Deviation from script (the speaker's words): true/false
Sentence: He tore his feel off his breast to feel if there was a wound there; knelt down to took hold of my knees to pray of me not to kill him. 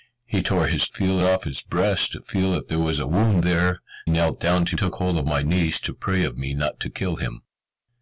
false